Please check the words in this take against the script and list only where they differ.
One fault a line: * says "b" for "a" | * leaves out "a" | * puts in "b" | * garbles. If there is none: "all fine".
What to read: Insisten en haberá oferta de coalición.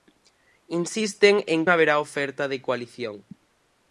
all fine